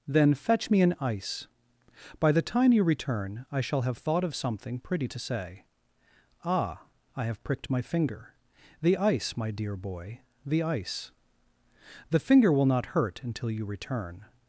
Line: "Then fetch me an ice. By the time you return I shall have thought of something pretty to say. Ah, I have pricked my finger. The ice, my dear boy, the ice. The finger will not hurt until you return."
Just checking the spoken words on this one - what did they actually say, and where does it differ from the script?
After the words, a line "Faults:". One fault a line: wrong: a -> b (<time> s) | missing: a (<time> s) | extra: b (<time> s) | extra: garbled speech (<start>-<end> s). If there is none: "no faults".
"Then fetch me an ice. By the time you return I shall have thought of something pretty to say. Ah, I have pricked my finger. The ice, my dear boy, the ice. The finger will not hurt until you return."
Faults:
no faults